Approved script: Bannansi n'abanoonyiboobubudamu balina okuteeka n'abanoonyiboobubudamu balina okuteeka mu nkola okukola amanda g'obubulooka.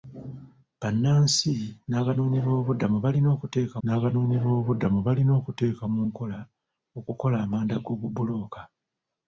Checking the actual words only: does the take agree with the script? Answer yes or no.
yes